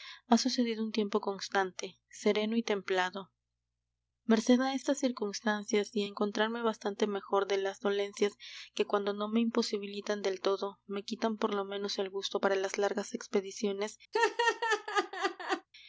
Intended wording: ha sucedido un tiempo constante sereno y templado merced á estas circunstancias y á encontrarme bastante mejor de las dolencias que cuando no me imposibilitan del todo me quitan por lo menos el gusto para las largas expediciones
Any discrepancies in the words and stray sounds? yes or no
yes